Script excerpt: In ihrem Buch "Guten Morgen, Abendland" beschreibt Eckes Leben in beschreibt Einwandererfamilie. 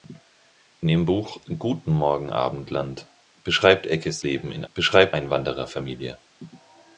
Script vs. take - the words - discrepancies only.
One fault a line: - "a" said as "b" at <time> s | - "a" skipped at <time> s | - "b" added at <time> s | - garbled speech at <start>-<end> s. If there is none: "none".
none